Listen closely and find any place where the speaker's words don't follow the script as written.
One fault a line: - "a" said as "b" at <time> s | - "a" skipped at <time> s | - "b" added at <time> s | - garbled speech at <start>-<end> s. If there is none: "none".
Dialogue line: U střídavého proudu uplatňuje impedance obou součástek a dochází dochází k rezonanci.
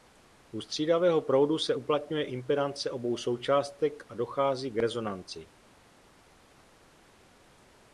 - "se" added at 1.6 s
- "dochází" skipped at 4.7 s